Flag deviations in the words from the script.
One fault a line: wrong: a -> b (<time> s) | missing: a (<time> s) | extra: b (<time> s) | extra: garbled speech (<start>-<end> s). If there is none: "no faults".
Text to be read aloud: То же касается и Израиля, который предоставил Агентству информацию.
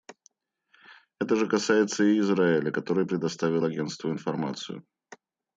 wrong: То -> Это (1.2 s)